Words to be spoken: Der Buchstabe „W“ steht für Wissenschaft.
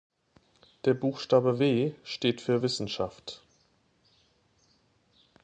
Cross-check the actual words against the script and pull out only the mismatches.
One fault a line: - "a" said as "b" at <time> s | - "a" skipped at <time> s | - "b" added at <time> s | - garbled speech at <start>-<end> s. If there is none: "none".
none